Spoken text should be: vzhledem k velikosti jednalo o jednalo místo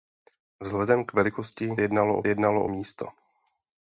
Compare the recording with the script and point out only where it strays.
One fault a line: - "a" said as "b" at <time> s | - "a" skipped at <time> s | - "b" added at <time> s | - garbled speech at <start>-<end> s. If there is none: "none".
none